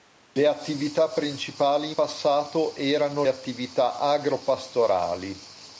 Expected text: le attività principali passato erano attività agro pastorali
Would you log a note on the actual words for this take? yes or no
no